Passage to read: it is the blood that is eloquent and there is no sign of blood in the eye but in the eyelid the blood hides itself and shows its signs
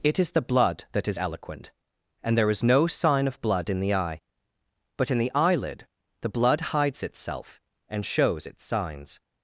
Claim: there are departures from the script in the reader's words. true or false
false